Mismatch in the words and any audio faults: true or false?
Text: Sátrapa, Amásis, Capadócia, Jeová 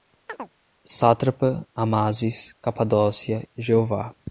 true